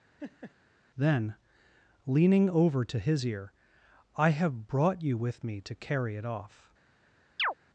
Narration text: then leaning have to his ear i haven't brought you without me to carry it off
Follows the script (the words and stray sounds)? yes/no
no